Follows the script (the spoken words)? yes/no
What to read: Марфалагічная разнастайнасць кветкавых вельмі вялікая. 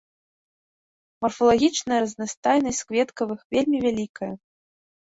yes